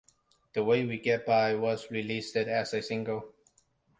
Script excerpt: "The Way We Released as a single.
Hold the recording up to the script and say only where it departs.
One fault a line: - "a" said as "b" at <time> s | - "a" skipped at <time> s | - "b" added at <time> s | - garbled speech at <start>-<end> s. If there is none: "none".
- "Get By was" added at 1.0 s